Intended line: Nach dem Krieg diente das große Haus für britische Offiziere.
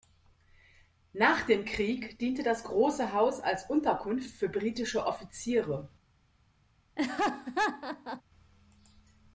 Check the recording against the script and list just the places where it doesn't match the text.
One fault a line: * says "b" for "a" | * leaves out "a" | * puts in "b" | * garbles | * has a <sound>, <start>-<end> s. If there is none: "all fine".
* puts in "als Unterkunft"
* has a laugh, 7.0-8.2 s